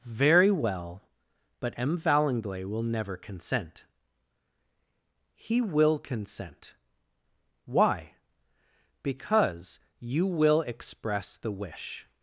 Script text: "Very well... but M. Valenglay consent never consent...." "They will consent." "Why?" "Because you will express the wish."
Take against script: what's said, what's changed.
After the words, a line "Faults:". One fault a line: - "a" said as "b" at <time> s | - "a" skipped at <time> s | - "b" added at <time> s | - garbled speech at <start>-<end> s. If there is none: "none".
"Very well... but M. Valenglay will never consent...." "He will consent." "Why?" "Because you will express the wish."
Faults:
- "consent" said as "will" at 2.6 s
- "They" said as "He" at 5.3 s